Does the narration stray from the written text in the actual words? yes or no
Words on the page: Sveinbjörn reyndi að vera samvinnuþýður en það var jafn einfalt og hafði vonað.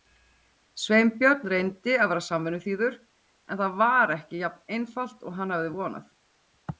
yes